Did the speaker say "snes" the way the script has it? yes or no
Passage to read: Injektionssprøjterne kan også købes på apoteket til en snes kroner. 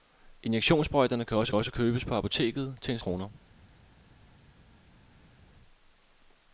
no